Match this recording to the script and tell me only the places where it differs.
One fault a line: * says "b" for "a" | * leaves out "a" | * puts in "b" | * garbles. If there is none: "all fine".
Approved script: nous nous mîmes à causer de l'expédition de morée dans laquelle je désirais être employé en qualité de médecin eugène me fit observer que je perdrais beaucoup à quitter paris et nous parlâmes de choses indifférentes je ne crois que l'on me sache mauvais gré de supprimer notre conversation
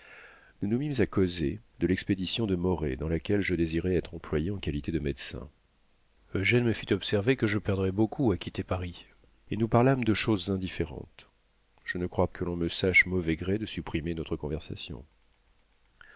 all fine